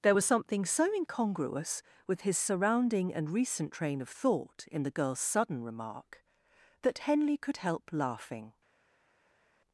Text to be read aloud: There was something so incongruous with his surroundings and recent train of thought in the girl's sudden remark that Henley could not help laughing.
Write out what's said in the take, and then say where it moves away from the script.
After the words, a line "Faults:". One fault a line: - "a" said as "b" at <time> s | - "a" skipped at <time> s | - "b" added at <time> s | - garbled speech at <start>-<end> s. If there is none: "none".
There was something so incongruous with his surrounding and recent train of thought in the girl's sudden remark that Henley could help laughing.
Faults:
- "surroundings" said as "surrounding" at 2.4 s
- "not" skipped at 7.6 s